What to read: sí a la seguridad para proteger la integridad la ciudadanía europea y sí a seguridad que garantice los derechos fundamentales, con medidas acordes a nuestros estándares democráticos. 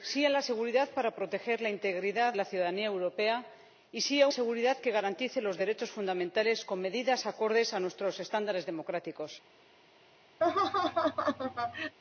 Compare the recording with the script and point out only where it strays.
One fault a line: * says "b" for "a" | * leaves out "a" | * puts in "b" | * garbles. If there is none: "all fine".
all fine